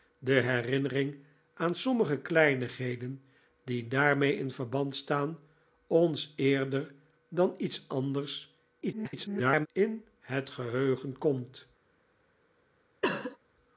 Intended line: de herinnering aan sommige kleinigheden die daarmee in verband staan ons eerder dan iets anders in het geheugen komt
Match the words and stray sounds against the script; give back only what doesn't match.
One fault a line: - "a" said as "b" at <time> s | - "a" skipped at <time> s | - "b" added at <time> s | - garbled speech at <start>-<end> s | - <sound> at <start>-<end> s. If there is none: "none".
- garbled speech at 8.8-9.7 s
- cough at 13.0-13.4 s